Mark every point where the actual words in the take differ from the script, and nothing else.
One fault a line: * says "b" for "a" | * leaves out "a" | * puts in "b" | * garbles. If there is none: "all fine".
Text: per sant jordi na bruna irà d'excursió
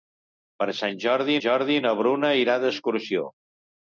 * puts in "jordi"